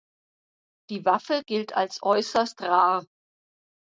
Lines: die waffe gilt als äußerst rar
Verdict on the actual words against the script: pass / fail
pass